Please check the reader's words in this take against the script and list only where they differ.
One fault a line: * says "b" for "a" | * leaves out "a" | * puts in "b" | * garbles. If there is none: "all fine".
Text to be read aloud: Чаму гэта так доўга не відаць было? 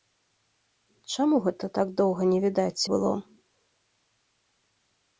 all fine